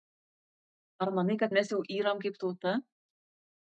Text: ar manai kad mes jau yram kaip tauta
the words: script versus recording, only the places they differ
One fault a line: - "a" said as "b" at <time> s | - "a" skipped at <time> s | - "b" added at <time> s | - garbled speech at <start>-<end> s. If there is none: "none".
none